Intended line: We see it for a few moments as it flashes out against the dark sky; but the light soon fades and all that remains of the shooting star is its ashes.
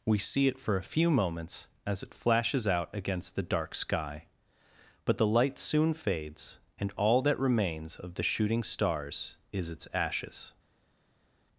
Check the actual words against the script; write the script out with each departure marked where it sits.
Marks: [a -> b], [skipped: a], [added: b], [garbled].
We see it for a few moments as it flashes out against the dark sky; but the light soon fades and all that remains of the shooting [star -> stars] is its ashes.